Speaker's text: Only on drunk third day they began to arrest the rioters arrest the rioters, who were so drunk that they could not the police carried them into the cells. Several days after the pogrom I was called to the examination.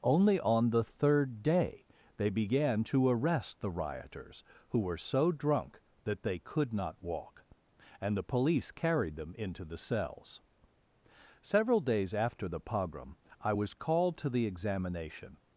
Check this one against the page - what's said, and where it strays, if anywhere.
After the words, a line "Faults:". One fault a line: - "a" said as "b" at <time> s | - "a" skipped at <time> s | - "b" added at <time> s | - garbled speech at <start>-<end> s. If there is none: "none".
Only on the third day they began to arrest the rioters, who were so drunk that they could not walk, and the police carried them into the cells. Several days after the pogrom I was called to the examination.
Faults:
- "drunk" said as "the" at 0.7 s
- "arrest the rioters" skipped at 4.4 s
- "walk and" added at 7.0 s